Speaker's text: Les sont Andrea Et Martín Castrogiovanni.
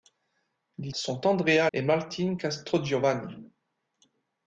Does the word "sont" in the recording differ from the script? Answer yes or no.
no